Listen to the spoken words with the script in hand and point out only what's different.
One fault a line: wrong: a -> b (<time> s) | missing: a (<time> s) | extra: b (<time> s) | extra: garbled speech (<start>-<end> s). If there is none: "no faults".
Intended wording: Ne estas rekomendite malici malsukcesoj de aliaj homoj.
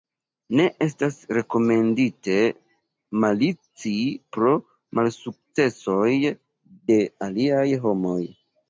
extra: pro (4.4 s)